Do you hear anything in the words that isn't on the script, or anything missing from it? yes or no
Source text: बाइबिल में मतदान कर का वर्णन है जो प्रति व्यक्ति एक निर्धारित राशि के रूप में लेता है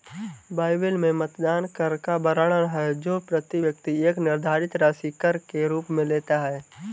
yes